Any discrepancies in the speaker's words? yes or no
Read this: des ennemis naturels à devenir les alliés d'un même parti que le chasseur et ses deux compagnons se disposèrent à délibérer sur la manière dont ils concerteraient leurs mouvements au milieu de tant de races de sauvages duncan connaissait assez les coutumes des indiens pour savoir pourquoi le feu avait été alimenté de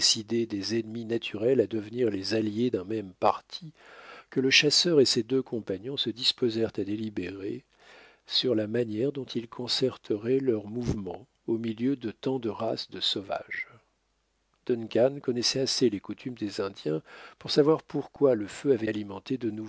yes